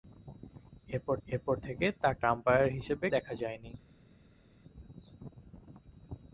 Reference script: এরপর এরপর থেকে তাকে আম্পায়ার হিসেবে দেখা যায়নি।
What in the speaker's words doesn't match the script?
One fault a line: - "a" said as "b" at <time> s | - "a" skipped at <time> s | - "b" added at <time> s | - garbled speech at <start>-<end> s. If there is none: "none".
none